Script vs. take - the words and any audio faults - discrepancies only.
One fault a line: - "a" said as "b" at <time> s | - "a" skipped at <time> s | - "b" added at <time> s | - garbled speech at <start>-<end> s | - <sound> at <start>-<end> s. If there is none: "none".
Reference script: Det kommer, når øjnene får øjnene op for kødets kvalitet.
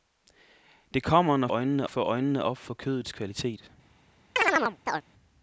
- chirp at 4.4-5.0 s